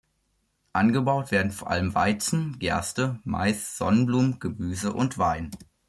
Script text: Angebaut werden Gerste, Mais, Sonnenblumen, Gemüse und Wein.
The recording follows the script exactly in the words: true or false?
false